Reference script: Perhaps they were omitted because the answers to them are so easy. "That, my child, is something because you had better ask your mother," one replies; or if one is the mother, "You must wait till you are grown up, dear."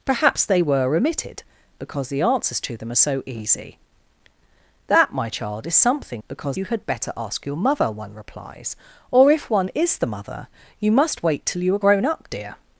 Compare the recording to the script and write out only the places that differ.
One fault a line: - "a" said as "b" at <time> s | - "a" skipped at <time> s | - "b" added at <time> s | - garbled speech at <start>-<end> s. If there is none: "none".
none